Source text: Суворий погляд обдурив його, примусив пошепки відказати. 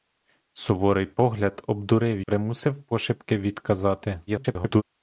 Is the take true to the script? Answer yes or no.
no